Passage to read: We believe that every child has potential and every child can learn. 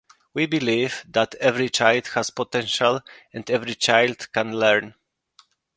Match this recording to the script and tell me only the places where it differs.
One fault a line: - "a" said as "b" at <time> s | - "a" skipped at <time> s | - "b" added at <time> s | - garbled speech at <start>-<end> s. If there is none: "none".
none